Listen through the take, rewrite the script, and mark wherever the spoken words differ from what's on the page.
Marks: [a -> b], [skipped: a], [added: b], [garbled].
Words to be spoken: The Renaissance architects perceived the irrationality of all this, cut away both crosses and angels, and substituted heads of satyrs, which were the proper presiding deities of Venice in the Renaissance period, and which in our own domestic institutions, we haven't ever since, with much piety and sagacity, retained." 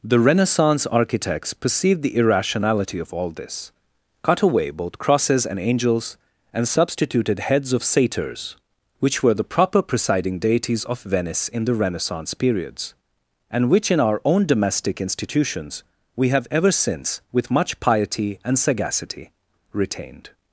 The Renaissance architects perceived the irrationality of all this, cut away both crosses and angels, and substituted heads of satyrs, which were the proper presiding deities of Venice in the Renaissance [period, -> periods] and which in our own domestic institutions, we [haven't -> have] ever since, with much piety and sagacity, retained."